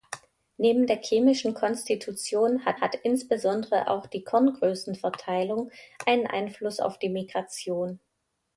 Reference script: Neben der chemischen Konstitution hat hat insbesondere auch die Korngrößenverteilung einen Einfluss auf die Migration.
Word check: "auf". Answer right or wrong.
right